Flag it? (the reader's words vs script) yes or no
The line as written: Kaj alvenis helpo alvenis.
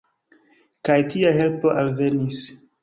yes